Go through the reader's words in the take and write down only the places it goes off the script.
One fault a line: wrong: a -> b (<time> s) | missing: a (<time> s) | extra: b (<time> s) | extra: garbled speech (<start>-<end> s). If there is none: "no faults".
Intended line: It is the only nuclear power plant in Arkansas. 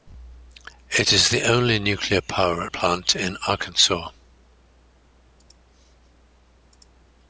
no faults